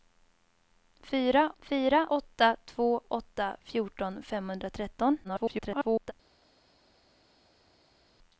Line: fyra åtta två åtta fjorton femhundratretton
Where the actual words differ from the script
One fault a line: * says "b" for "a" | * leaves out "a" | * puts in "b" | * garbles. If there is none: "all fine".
* puts in "fyra"
* garbles